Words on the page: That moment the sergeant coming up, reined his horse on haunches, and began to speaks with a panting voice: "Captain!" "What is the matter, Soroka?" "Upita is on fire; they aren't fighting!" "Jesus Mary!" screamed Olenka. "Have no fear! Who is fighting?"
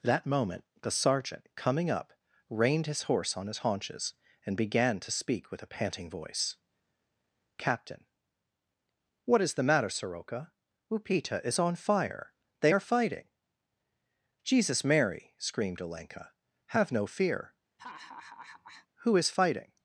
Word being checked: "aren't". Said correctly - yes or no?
no